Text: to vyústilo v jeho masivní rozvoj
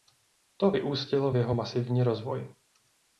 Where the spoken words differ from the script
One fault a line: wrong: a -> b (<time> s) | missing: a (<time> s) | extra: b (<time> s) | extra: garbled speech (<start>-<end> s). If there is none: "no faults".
no faults